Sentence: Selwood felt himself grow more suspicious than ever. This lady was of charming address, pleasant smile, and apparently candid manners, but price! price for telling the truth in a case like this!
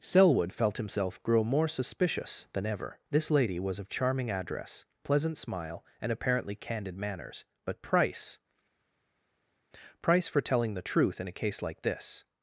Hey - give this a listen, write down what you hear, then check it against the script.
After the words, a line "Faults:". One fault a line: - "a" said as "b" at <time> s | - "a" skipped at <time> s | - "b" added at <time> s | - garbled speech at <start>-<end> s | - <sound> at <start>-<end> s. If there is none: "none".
Selwood felt himself grow more suspicious than ever. This lady was of charming address, pleasant smile, and apparently candid manners, but price! price for telling the truth in a case like this!
Faults:
none